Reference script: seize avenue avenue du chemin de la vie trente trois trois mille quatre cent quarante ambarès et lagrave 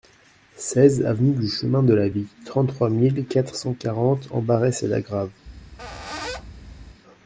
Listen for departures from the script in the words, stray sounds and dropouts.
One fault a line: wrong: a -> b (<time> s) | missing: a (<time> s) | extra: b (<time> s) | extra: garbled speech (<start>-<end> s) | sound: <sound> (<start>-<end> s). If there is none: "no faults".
missing: avenue (1.4 s)
missing: trois (2.9 s)
sound: squeak (5.5-7.0 s)